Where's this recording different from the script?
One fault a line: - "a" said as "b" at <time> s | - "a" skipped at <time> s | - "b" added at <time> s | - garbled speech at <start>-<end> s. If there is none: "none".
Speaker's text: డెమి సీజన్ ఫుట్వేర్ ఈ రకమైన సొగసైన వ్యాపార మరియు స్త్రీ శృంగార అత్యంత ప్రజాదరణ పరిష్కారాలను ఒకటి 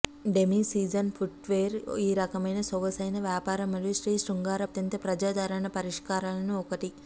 none